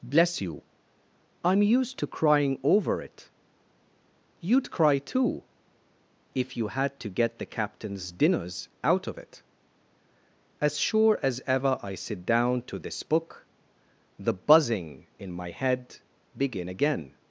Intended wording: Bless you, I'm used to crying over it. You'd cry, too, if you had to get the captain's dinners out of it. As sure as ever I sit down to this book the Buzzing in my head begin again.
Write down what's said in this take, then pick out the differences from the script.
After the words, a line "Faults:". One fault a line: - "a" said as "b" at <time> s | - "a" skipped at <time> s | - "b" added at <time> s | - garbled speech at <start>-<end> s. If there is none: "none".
Bless you, I'm used to crying over it. You'd cry, too, if you had to get the captain's dinners out of it. As sure as ever I sit down to this book the Buzzing in my head begin again.
Faults:
none